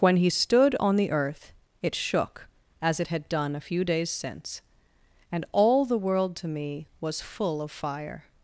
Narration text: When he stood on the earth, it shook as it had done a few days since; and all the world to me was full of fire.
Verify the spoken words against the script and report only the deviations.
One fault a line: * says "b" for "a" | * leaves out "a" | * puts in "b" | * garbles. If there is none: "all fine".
all fine